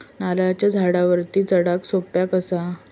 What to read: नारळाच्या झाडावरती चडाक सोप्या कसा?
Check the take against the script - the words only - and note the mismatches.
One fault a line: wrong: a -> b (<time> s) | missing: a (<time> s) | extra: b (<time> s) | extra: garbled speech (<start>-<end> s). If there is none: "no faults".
no faults